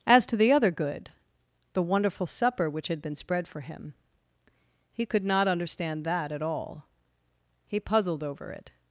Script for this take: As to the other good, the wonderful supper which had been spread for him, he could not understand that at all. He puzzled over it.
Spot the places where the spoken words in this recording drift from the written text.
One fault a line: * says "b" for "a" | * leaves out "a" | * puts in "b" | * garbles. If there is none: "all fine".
all fine